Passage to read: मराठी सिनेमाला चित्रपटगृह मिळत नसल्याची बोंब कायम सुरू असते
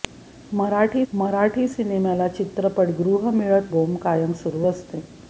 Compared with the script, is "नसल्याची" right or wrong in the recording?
wrong